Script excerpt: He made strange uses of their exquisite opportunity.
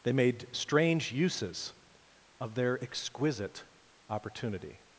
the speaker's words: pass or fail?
fail